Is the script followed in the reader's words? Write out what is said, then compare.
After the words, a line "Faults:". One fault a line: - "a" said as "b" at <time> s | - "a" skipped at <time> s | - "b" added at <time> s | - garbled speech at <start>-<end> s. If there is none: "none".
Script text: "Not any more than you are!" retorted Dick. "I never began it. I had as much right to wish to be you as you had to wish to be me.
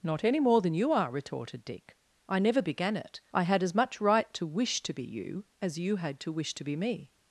"Not any more than you are!" retorted Dick. "I never began it. I had as much right to wish to be you as you had to wish to be me.
Faults:
none